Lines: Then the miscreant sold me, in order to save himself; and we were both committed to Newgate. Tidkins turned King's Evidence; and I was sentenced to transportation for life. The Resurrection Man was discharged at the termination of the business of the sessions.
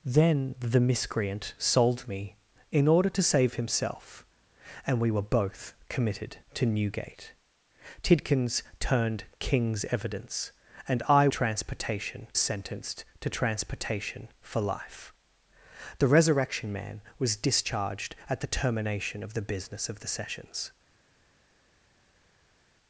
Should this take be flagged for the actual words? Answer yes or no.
yes